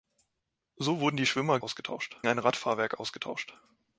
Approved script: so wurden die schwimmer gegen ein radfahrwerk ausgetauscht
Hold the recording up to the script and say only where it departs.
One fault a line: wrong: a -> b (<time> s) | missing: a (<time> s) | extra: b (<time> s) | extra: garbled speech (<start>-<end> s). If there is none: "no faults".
wrong: gegen -> ausgetauscht (1.6 s)